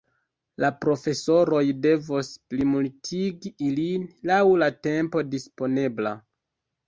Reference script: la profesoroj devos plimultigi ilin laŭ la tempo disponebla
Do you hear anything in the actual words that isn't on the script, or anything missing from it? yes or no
no